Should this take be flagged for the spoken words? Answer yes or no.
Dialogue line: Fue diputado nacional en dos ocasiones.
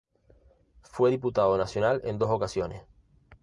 no